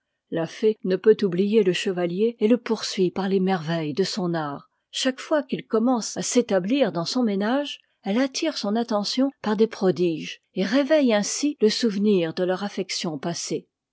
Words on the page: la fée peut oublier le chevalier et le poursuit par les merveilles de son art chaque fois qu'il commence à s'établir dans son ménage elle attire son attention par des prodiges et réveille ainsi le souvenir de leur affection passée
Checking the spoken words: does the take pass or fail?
fail